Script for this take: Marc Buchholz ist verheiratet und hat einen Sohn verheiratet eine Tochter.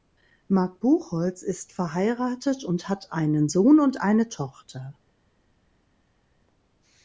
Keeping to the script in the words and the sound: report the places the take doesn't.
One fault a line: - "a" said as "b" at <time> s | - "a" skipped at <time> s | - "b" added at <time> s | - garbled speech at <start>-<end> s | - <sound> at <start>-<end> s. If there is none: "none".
- "verheiratet" said as "und" at 3.8 s